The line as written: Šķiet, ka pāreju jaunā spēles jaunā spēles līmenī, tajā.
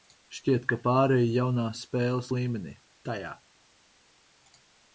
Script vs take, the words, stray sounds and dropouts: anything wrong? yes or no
yes